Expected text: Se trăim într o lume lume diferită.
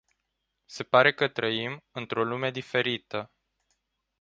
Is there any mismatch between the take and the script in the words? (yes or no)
yes